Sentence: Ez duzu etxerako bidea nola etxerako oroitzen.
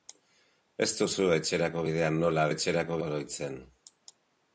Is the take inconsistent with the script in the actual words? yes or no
no